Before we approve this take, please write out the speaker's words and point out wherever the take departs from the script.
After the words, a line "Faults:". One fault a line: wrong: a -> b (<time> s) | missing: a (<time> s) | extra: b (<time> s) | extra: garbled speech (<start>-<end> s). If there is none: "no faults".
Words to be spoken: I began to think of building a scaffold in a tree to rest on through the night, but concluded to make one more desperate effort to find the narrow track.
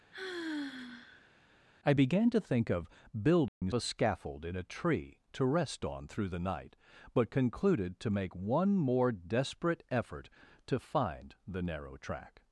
I began to think of building a scaffold in a tree to rest on through the night, but concluded to make one more desperate effort to find the narrow track.
Faults:
no faults